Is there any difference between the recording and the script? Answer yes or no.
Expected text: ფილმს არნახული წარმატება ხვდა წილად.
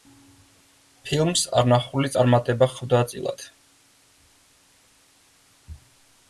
no